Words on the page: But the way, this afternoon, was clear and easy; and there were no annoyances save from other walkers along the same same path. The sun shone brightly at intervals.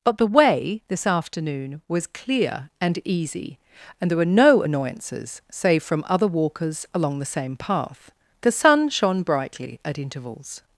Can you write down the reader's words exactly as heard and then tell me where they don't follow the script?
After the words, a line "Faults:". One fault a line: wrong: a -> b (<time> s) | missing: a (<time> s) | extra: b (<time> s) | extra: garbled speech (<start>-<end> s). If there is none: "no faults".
But the way, this afternoon, was clear and easy; and there were no annoyances save from other walkers along the same path. The sun shone brightly at intervals.
Faults:
missing: same (7.6 s)